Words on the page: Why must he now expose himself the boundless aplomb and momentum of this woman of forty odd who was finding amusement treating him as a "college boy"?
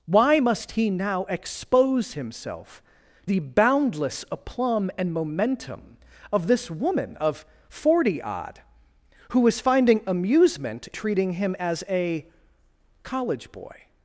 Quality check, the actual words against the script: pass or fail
pass